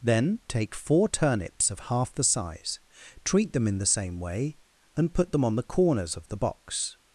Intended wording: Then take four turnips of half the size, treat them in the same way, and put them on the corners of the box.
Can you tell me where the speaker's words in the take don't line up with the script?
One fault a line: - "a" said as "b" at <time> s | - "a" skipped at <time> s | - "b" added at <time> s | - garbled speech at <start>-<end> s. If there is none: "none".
none